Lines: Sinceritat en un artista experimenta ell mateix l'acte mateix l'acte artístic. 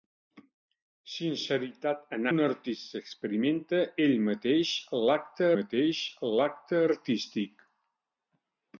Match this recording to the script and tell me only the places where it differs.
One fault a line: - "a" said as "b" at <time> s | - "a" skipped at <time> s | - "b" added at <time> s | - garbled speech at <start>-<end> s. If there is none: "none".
none